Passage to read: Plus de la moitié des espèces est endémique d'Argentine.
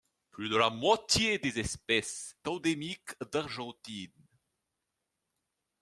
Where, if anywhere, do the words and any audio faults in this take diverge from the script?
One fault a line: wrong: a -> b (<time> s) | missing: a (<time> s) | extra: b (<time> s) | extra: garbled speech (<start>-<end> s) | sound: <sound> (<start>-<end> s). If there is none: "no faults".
missing: est (2.4 s)